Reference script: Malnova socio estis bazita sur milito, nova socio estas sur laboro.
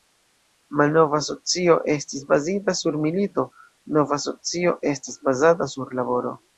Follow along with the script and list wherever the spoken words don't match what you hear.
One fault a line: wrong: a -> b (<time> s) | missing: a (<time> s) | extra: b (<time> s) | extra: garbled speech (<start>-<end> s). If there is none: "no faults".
extra: bazata (5.3 s)